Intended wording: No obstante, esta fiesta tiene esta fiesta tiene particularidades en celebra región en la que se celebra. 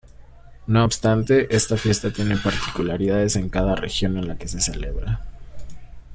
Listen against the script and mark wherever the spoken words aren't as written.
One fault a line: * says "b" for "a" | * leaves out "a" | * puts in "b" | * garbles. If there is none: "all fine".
* leaves out "esta fiesta tiene"
* says "cada" for "celebra"